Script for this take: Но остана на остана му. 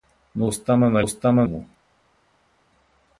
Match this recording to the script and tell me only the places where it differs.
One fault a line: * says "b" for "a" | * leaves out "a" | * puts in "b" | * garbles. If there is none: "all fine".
all fine